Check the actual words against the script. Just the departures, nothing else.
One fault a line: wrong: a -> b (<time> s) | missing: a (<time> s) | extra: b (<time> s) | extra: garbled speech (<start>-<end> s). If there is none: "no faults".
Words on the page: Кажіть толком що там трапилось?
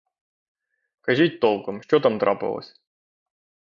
no faults